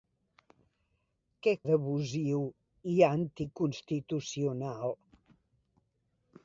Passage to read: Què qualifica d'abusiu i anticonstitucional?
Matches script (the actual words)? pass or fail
fail